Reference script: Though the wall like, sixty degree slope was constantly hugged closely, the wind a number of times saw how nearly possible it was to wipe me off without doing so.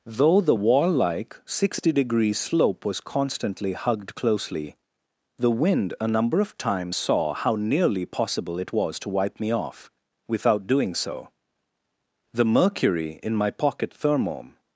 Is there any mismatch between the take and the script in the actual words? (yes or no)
yes